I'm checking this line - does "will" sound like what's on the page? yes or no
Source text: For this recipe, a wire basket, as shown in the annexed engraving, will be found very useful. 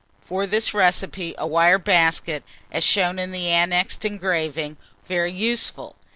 no